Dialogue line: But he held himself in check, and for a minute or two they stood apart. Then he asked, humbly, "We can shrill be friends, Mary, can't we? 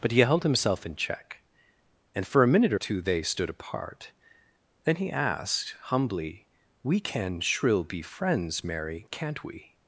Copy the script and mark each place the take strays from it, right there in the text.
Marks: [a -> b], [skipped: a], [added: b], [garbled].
But he held himself in check, and for a minute or two they stood apart. Then he asked, humbly, "We can shrill be friends, Mary, can't we?